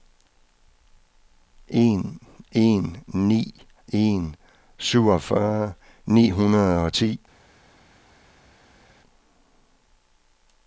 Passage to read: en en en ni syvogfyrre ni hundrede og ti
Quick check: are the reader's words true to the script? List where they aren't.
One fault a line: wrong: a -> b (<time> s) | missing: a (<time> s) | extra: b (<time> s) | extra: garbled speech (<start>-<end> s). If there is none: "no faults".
extra: ni (3.3 s)
missing: ni (4.3 s)